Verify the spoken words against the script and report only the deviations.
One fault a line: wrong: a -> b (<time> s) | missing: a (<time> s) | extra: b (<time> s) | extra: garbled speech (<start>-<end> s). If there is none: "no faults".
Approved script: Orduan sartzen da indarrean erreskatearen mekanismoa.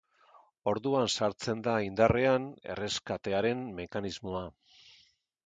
no faults